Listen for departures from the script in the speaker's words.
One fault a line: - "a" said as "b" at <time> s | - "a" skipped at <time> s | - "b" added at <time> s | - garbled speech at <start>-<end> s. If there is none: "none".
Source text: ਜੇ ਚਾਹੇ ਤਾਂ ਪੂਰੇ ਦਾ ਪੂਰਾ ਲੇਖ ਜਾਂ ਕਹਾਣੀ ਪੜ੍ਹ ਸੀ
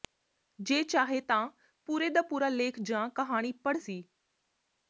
none